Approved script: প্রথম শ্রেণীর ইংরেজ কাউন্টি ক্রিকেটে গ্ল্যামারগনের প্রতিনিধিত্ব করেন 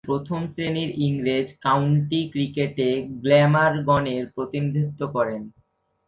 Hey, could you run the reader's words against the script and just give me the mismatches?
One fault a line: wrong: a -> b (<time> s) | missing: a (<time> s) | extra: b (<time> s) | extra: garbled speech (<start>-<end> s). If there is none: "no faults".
no faults